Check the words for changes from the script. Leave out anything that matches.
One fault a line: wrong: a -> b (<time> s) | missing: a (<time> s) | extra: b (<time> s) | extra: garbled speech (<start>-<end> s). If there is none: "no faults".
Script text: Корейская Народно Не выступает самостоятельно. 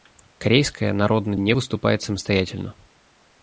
no faults